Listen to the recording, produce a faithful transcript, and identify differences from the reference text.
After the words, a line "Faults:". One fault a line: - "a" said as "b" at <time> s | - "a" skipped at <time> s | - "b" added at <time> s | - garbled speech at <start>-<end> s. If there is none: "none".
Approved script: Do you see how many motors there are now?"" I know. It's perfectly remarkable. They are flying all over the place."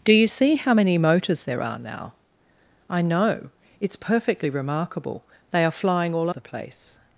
Do you see how many motors there are now?"" I know. It's perfectly remarkable. They are flying all the place."
Faults:
- "over" skipped at 6.3 s